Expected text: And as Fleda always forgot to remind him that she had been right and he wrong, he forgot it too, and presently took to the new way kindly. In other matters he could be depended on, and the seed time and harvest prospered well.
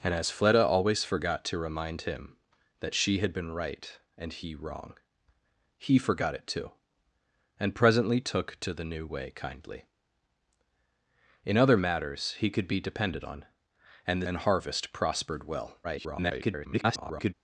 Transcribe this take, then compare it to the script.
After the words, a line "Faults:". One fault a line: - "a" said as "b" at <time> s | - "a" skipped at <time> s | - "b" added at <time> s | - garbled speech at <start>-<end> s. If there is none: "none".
And as Fleda always forgot to remind him that she had been right and he wrong, he forgot it too, and presently took to the new way kindly. In other matters he could be depended on, and the and harvest prospered well. [garbled]
Faults:
- "seed time" skipped at 14.3 s
- garbled speech at 15.8-17.3 s